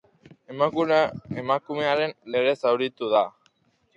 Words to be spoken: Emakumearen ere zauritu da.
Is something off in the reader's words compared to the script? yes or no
no